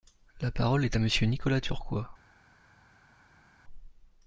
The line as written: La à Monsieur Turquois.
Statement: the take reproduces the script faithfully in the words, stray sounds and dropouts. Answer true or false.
false